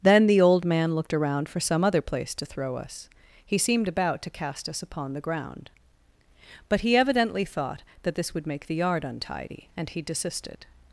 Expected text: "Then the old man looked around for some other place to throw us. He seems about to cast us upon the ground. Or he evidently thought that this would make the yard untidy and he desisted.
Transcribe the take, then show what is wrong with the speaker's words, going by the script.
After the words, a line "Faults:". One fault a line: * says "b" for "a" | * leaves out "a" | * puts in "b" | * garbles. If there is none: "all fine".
"Then the old man looked around for some other place to throw us. He seemed about to cast us upon the ground. But he evidently thought that this would make the yard untidy and he desisted.
Faults:
* says "seemed" for "seems"
* says "But" for "Or"